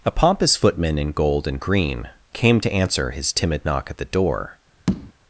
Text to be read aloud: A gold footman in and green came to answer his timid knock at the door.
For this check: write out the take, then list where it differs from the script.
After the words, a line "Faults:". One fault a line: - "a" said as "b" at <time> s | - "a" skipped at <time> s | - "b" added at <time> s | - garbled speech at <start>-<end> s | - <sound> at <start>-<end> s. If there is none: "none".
A pompous footman in gold and green came to answer his timid knock at the door.
Faults:
- "gold" said as "pompous" at 0.1 s
- "gold" added at 1.1 s
- tap at 4.9-5.1 s